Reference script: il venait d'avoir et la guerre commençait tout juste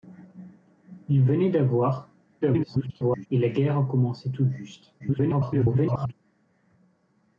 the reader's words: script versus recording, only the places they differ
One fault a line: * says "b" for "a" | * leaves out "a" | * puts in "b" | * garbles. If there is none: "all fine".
* garbles
* garbles